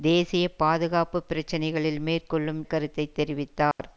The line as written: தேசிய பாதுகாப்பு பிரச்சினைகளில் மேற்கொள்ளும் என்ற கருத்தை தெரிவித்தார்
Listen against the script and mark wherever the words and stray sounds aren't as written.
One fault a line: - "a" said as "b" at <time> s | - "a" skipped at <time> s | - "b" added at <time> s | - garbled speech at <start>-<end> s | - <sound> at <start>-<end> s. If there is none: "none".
- "என்ற" skipped at 2.6 s
- dropout at 3.7-3.8 s